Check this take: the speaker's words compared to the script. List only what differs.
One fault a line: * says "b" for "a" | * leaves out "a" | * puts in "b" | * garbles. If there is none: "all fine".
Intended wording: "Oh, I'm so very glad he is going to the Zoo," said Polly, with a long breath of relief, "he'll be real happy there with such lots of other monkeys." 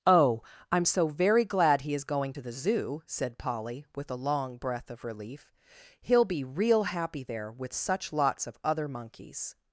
all fine